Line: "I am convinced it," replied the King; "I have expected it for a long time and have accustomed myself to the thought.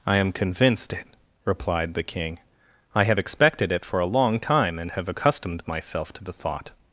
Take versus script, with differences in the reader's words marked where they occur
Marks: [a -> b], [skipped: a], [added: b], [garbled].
"I am convinced it," replied the King; "I have expected it for a long time and have accustomed myself to the thought.